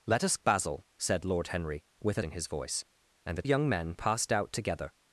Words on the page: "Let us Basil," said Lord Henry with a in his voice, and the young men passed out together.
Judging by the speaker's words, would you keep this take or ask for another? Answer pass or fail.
pass